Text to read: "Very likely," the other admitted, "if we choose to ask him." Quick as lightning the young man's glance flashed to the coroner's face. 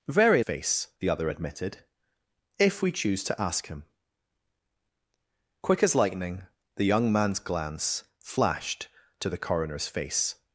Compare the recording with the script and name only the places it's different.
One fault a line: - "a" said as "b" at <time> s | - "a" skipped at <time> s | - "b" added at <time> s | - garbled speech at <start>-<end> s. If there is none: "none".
- "likely" said as "face" at 0.4 s